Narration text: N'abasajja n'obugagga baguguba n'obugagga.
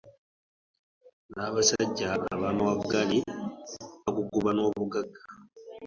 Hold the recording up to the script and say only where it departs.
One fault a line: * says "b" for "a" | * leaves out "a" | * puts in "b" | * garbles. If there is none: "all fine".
* says "ab'amawaggali" for "n'obugagga"